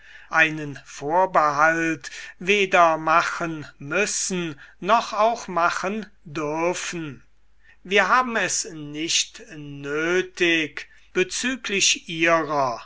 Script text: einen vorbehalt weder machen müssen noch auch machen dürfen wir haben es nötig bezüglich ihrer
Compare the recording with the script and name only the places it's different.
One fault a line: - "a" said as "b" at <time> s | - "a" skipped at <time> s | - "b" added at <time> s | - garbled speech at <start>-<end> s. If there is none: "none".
- "nicht" added at 8.7 s